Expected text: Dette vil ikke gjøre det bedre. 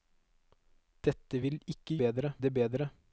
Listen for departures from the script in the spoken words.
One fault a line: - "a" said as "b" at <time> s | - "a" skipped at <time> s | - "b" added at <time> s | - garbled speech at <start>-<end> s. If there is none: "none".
- "gjøre" said as "bedre" at 2.0 s